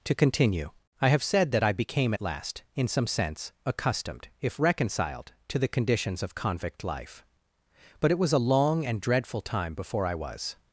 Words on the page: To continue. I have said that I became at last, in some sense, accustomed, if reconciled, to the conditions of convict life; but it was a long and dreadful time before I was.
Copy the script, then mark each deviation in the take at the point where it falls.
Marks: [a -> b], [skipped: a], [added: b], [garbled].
To continue. I have said that I became at last, in some sense, accustomed, if reconciled, to the conditions of convict life; but it was a long and dreadful time before I was.